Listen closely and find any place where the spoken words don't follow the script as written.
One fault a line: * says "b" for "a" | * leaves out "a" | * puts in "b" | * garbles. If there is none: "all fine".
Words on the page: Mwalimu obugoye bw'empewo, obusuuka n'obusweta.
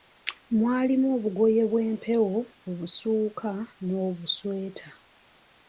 all fine